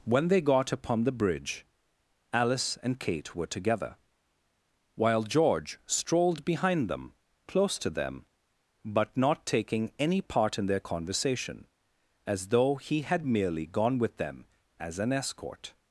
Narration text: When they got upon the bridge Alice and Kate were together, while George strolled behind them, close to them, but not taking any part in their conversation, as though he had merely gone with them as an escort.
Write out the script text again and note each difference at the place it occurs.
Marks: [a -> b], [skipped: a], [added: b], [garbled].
When they got upon the bridge Alice and Kate were together, while George strolled behind them, close to them, but not taking any part in their conversation, as though he had merely gone with them as an escort.